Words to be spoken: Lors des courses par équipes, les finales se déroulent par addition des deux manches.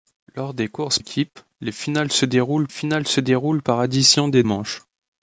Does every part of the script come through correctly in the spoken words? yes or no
no